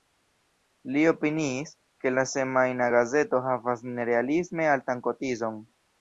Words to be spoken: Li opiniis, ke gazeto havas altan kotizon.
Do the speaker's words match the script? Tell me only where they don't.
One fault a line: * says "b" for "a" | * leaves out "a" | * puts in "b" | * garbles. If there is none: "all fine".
* puts in "la semajna"
* puts in "nerealisme"